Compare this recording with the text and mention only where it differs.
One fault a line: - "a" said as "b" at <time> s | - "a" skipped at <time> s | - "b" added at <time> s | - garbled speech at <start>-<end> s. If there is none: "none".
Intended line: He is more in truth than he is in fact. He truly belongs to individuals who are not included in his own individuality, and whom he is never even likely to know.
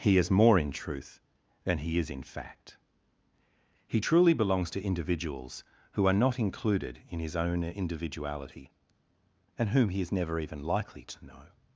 none